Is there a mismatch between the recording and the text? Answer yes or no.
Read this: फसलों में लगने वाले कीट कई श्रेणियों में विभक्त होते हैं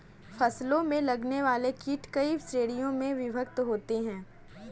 no